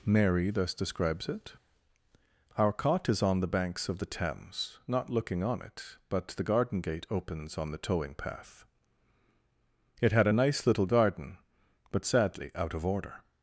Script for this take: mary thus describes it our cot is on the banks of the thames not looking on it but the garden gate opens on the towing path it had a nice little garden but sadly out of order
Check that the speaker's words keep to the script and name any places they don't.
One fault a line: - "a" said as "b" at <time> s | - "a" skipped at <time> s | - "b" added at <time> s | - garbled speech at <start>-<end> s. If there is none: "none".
none